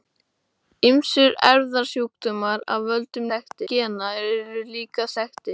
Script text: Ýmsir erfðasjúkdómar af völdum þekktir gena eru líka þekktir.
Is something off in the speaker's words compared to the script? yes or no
no